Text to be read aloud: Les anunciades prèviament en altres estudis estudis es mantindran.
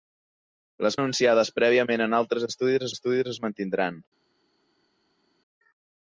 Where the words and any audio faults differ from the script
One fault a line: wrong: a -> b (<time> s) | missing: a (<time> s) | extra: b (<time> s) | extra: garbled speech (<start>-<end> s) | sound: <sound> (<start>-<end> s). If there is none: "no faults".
no faults